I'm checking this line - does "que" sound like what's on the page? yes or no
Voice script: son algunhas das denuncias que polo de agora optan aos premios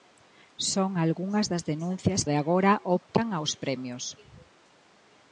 no